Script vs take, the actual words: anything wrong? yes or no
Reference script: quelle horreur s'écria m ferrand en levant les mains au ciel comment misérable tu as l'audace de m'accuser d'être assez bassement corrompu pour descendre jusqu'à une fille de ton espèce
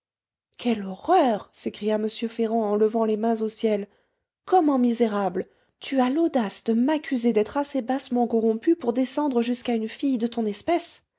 no